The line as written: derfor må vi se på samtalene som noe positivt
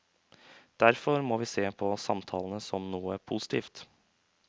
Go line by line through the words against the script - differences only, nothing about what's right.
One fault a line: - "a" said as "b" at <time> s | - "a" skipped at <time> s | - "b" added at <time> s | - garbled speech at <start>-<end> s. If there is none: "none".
none